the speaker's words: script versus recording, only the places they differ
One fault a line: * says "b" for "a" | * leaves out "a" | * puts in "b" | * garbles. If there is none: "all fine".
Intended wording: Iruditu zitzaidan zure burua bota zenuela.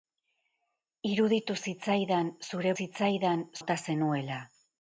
* says "zitzaidan" for "burua"